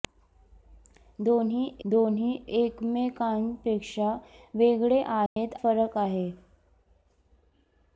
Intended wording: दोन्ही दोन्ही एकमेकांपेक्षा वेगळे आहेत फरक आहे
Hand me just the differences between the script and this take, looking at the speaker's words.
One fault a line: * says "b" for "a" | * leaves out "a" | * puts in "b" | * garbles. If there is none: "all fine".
all fine